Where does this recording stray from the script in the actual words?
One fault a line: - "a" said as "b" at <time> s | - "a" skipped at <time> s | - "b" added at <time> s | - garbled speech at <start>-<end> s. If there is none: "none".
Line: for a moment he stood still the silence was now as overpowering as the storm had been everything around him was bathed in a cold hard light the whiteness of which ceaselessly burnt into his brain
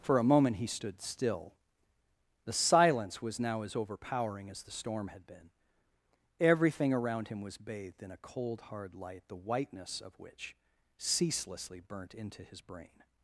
none